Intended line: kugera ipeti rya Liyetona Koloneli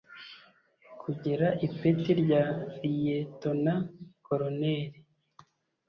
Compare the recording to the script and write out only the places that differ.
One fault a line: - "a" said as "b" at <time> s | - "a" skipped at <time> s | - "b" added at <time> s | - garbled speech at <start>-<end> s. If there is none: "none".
none